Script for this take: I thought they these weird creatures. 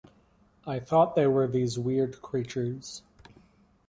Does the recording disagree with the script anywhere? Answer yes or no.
yes